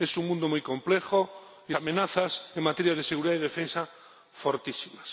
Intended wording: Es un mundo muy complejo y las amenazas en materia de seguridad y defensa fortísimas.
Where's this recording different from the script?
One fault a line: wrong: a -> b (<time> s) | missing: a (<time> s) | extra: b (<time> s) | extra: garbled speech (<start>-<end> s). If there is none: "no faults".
missing: las (1.8 s)